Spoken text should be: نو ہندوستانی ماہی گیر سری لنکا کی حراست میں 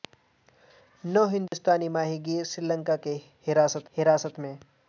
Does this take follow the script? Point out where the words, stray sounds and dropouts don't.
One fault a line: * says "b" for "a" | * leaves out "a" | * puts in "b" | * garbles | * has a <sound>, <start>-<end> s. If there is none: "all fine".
* has a dropout, 1.5-1.5 s
* puts in "حراست"